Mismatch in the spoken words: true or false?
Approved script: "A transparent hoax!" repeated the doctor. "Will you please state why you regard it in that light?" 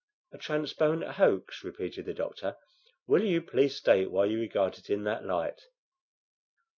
false